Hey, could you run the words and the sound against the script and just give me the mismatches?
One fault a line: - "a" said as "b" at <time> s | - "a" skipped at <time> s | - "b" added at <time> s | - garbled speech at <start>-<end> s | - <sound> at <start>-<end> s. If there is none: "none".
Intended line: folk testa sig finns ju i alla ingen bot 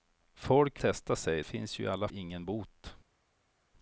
none